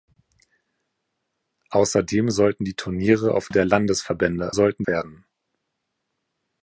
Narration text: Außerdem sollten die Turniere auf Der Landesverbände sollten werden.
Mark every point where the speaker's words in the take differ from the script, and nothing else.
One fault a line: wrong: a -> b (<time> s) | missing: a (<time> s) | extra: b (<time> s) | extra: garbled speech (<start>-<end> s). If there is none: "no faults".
no faults